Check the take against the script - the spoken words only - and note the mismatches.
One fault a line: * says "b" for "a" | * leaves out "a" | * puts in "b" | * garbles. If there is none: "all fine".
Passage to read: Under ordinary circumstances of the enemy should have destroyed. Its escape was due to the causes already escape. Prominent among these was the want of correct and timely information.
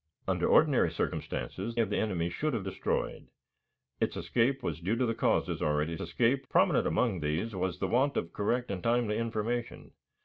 all fine